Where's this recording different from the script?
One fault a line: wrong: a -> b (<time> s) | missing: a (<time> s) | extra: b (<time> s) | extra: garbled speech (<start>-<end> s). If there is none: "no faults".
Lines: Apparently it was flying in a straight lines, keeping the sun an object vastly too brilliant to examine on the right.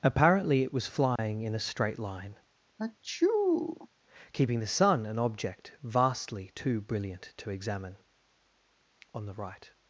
wrong: lines -> line (2.0 s)